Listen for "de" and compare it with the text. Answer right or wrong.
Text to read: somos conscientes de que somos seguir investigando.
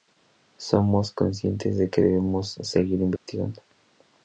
right